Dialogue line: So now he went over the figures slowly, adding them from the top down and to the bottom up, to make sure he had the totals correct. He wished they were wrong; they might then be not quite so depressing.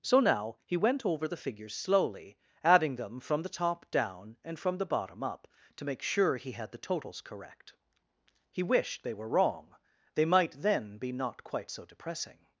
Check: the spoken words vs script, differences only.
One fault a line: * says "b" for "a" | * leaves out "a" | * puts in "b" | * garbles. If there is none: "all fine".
* says "from" for "to"